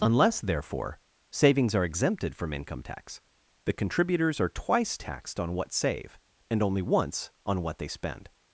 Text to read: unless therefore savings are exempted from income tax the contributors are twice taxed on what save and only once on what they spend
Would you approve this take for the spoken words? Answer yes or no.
yes